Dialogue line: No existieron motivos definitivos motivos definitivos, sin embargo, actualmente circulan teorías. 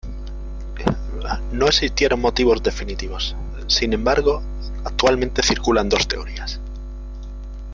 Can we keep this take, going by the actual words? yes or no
no